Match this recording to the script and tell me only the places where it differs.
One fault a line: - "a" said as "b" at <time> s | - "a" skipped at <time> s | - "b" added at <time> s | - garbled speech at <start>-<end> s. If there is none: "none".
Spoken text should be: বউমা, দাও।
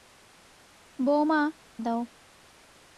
none